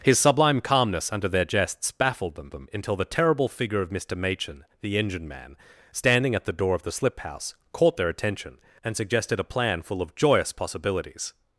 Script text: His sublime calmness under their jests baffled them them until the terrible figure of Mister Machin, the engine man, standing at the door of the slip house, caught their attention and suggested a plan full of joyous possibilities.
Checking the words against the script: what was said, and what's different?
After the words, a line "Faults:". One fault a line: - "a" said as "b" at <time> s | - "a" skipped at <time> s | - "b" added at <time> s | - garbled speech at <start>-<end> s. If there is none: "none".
His sublime calmness under their jests baffled them them until the terrible figure of Mister Machin, the engine man, standing at the door of the slip house, caught their attention and suggested a plan full of joyous possibilities.
Faults:
none